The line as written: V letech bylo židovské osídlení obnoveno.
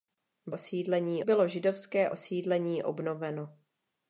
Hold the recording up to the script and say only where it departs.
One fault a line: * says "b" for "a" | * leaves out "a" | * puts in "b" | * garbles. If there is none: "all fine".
* says "osídlení" for "letech"